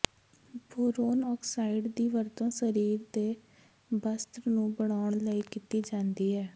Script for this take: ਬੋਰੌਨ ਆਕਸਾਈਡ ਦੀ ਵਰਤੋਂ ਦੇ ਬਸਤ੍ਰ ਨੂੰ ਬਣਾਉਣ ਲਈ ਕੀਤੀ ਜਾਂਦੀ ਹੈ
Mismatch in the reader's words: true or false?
true